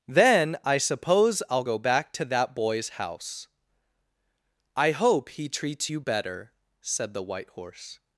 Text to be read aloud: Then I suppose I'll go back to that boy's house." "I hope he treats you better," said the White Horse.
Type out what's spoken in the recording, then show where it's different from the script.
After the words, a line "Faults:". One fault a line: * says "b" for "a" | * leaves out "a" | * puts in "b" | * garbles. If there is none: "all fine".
Then I suppose I'll go back to that boy's house." "I hope he treats you better," said the White Horse.
Faults:
all fine